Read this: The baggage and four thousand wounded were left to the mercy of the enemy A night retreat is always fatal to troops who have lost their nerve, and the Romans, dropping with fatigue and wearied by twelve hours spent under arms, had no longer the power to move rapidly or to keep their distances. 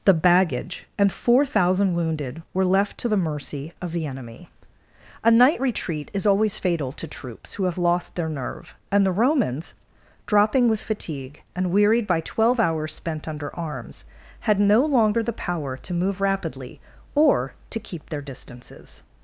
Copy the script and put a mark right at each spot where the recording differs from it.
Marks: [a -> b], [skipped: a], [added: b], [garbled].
The baggage and four thousand wounded were left to the mercy of the enemy A night retreat is always fatal to troops who have lost their nerve, and the Romans, dropping with fatigue and wearied by twelve hours spent under arms, had no longer the power to move rapidly or to keep their distances.